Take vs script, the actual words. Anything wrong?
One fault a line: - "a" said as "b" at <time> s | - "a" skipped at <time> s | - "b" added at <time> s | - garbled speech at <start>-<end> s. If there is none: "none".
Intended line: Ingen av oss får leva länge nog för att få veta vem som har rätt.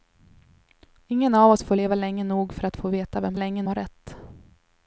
- "som" said as "länge" at 3.3 s